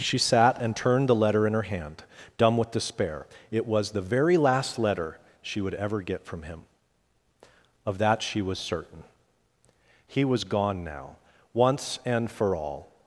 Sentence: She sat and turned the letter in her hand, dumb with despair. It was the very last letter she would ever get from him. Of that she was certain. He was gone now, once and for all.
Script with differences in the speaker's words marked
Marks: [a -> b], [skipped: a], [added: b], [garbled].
She sat and turned the letter in her hand, dumb with despair. It was the very last letter she would ever get from him. Of that she was certain. He was gone now, once and for all.